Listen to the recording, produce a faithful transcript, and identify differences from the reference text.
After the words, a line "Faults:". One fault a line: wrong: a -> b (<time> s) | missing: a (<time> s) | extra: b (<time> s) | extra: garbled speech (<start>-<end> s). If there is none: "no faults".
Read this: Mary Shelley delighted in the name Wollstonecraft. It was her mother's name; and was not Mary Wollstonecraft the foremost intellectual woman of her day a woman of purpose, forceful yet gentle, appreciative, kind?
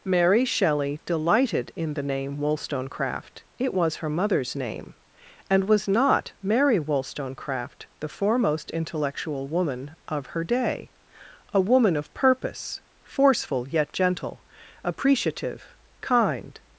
Mary Shelley delighted in the name Wollstonecraft. It was her mother's name; and was not Mary Wollstonecraft the foremost intellectual woman of her day a woman of purpose, forceful yet gentle, appreciative, kind?
Faults:
no faults